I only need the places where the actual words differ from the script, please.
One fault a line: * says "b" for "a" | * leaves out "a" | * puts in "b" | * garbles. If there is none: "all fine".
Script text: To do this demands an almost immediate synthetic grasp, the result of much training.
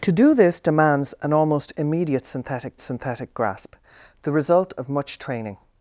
* puts in "synthetic"